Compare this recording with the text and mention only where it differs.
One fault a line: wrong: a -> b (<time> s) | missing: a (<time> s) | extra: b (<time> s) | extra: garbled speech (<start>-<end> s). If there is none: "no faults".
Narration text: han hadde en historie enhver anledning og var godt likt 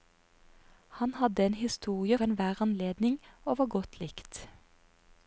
no faults